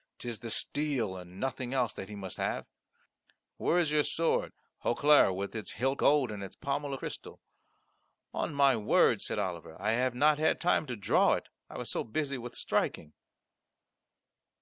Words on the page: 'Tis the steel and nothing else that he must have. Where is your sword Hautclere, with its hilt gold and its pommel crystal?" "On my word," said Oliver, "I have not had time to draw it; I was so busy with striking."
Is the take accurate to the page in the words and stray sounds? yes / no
yes